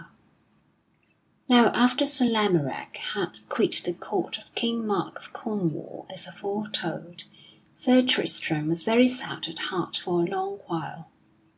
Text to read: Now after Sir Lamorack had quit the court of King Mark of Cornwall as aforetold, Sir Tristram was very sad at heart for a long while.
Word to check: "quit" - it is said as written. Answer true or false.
true